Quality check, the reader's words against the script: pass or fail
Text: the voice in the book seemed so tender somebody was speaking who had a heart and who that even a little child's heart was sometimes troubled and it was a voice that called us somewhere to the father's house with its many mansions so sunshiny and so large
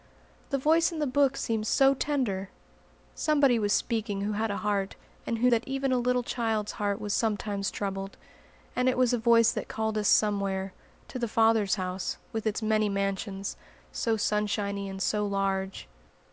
pass